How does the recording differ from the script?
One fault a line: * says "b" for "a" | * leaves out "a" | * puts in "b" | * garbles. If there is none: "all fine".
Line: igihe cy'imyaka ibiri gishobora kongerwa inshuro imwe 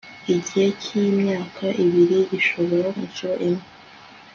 * leaves out "kongerwa"